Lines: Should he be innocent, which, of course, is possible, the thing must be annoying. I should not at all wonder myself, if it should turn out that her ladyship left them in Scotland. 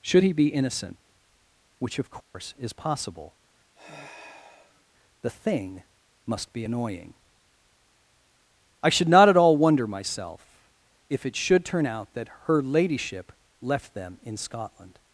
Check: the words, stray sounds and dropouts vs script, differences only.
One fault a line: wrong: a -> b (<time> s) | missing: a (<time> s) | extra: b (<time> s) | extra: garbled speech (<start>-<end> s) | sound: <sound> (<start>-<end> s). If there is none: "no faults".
sound: dropout (2.2-2.3 s)
sound: sigh (3.7-4.8 s)